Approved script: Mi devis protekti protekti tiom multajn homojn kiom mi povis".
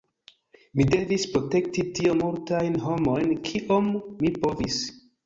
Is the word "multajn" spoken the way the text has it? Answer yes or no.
yes